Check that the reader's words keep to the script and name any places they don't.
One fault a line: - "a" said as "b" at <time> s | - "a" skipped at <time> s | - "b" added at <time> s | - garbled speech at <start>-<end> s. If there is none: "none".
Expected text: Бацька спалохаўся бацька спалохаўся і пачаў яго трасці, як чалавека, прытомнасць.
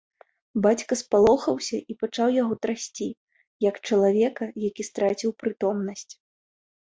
- "бацька спалохаўся" skipped at 1.8 s
- "які страціў" added at 4.7 s